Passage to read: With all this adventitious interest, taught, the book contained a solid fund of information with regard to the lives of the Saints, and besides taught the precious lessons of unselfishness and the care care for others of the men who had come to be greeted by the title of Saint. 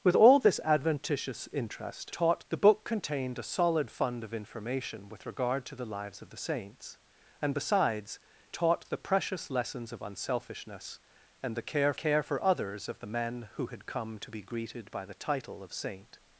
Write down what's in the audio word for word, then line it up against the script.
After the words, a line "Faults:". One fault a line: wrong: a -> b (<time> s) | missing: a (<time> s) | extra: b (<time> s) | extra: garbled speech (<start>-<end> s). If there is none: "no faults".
With all this adventitious interest, taught, the book contained a solid fund of information with regard to the lives of the Saints, and besides taught the precious lessons of unselfishness and the care care for others of the men who had come to be greeted by the title of Saint.
Faults:
no faults